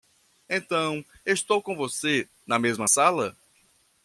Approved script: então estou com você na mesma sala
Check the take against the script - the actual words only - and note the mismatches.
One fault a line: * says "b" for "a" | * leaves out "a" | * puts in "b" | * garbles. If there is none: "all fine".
all fine